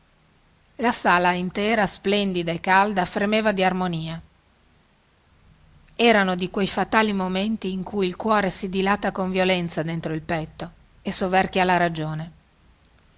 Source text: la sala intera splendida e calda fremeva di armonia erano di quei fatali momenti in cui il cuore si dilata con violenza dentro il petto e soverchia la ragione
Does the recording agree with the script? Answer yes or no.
yes